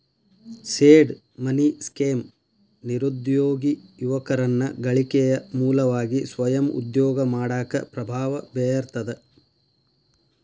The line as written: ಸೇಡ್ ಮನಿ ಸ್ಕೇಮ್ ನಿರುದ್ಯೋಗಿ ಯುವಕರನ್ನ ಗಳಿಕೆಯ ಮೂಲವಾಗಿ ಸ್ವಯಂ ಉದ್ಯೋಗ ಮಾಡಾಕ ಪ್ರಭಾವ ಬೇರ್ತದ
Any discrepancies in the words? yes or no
no